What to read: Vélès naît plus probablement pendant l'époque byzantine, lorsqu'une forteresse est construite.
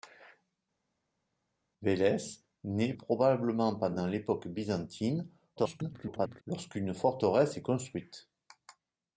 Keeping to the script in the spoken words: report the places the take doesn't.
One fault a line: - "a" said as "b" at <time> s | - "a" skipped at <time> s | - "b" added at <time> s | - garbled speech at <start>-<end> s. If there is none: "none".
- "plus" skipped at 2.9 s
- garbled speech at 5.6-6.4 s